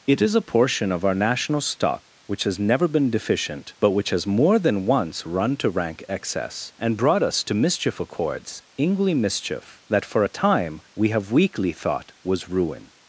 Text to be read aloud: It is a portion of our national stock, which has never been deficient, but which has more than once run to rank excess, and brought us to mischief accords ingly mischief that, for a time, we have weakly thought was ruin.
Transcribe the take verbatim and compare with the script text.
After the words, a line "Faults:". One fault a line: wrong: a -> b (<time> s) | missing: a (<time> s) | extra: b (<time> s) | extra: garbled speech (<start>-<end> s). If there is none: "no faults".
It is a portion of our national stock, which has never been deficient, but which has more than once run to rank excess, and brought us to mischief accords ingly mischief that, for a time, we have weakly thought was ruin.
Faults:
no faults